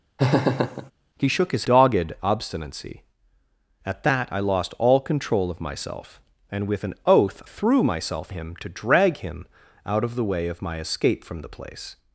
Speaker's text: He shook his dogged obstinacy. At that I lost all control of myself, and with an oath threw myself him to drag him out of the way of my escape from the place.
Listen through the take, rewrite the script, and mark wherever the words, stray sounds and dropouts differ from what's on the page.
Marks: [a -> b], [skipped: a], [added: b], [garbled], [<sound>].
[laugh] He shook his dogged obstinacy. At that I lost all control of myself, and with an oath threw myself him to drag him out of the way of my escape from the place.